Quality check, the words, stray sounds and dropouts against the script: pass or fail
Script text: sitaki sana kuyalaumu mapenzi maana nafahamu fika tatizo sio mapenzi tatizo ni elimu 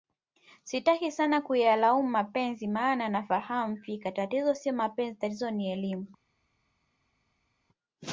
pass